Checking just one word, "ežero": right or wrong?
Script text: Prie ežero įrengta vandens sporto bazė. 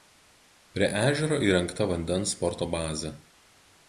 right